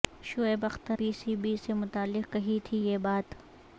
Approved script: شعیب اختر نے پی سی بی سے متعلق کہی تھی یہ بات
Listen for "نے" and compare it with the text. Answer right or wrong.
wrong